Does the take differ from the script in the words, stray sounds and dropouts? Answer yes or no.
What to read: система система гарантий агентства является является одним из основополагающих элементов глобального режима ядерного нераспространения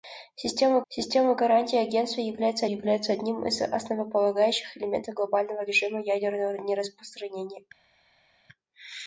no